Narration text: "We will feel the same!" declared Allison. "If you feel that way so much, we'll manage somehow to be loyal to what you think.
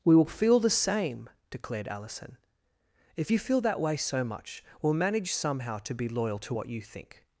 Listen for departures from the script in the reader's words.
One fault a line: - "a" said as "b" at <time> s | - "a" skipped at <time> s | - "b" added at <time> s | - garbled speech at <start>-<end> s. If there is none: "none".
none